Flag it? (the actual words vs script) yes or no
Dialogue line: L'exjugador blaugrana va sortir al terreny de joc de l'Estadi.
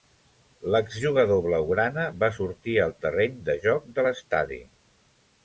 no